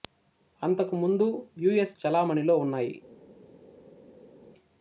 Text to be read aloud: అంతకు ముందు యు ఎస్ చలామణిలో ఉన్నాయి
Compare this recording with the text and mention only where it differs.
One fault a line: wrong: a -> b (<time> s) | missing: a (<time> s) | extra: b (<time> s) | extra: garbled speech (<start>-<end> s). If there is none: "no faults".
no faults